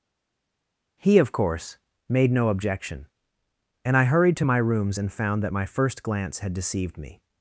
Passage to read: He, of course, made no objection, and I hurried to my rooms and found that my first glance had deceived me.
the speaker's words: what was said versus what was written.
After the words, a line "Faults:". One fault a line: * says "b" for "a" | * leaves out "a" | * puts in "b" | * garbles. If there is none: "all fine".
He, of course, made no objection, and I hurried to my rooms and found that my first glance had deceived me.
Faults:
all fine